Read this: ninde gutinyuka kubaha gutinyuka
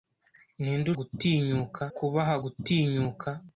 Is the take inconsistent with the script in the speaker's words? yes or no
no